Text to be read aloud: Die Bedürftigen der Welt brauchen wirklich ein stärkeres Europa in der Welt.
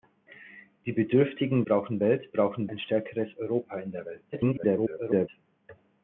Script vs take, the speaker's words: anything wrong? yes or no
yes